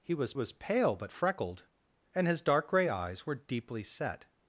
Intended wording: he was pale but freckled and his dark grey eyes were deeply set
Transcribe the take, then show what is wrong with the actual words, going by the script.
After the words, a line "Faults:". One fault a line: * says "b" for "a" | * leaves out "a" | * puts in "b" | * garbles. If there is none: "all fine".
he was was pale but freckled and his dark grey eyes were deeply set
Faults:
* puts in "was"